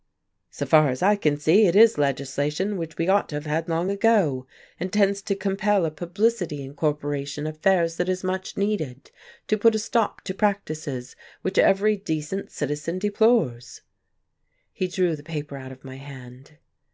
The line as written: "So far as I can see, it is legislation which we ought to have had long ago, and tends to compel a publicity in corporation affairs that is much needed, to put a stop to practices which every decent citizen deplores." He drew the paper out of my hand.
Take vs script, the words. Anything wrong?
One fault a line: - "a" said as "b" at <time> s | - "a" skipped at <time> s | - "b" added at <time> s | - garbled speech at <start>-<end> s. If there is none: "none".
none